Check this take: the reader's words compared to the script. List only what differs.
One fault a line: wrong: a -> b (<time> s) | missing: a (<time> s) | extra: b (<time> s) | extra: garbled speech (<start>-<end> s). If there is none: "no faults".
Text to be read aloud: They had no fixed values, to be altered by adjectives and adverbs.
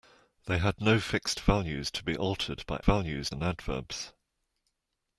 wrong: adjectives -> values (2.8 s)